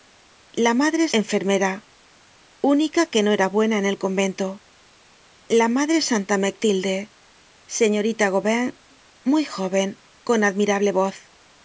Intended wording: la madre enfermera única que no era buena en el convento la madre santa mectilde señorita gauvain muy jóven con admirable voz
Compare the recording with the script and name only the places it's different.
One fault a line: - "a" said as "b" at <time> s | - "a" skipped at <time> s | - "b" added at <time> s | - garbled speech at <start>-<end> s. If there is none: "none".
none